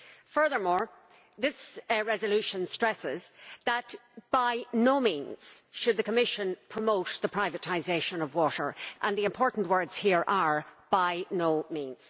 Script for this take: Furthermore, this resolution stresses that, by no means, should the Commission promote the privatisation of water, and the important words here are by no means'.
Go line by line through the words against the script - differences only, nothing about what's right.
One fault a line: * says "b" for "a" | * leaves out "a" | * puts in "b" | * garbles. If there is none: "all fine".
all fine